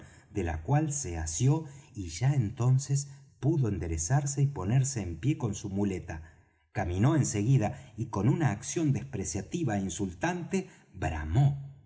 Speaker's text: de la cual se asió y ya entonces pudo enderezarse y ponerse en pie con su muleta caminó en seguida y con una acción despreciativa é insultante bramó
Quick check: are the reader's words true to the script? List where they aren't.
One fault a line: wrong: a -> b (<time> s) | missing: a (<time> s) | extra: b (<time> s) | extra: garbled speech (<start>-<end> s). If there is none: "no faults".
no faults